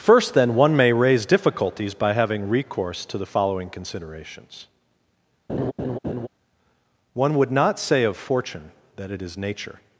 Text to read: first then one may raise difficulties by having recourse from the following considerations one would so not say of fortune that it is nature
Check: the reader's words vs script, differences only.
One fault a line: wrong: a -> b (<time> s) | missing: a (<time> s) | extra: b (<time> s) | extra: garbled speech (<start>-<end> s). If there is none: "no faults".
wrong: from -> to (3.0 s)
missing: so (7.5 s)